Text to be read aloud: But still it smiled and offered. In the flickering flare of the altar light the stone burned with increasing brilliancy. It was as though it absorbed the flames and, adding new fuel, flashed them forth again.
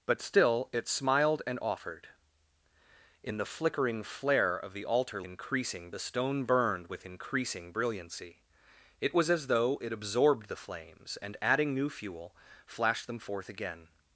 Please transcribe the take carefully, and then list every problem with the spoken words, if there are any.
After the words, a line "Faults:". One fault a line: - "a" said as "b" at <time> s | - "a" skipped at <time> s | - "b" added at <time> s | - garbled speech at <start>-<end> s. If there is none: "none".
But still it smiled and offered. In the flickering flare of the altar increasing the stone burned with increasing brilliancy. It was as though it absorbed the flames and, adding new fuel, flashed them forth again.
Faults:
- "light" said as "increasing" at 5.2 s